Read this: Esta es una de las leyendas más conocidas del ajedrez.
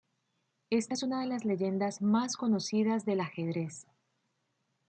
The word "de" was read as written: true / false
true